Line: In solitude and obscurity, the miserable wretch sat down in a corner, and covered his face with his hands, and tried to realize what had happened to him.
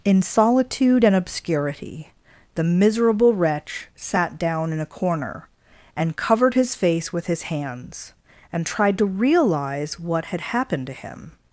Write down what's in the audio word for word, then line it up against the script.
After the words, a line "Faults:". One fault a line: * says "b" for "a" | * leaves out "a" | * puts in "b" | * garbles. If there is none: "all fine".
In solitude and obscurity, the miserable wretch sat down in a corner, and covered his face with his hands, and tried to realize what had happened to him.
Faults:
all fine